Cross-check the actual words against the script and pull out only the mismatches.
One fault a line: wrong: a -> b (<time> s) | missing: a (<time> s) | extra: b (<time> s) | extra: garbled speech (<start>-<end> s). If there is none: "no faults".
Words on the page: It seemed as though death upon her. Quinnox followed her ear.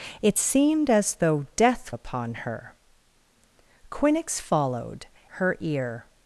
no faults